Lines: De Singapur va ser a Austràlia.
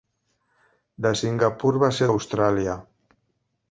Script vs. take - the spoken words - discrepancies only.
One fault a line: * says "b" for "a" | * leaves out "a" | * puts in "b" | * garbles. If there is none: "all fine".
all fine